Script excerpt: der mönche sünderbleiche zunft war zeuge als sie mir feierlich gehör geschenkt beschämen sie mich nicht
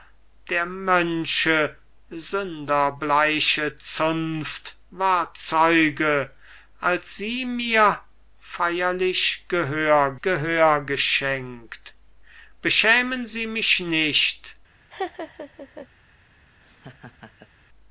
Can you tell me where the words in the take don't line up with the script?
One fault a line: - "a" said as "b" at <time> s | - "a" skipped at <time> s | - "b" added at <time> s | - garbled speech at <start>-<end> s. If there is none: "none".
- "gehör" added at 10.2 s